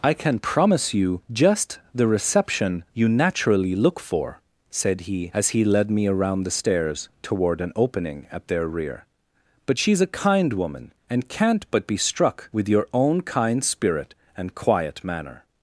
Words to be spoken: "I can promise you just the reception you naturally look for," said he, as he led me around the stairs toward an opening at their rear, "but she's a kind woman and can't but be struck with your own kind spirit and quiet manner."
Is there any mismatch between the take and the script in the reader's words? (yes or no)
no